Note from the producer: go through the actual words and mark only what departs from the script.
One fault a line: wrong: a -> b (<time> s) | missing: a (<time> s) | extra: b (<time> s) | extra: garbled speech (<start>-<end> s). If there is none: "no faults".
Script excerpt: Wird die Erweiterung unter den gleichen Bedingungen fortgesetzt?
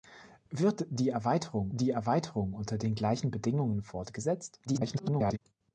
extra: die Erweiterung (1.7 s)
extra: garbled speech (4.7-5.4 s)